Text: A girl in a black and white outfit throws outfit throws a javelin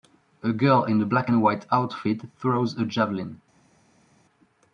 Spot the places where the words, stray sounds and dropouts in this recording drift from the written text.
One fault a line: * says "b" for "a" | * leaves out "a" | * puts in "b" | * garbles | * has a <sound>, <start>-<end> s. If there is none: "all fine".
* leaves out "outfit throws"